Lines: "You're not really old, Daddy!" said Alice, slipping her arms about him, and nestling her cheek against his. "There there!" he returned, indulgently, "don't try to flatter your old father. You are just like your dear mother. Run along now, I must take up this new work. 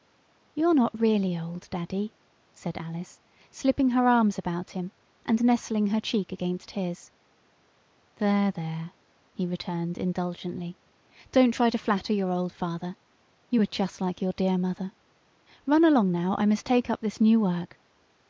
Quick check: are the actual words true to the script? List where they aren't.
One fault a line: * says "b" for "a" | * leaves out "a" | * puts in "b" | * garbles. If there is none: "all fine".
all fine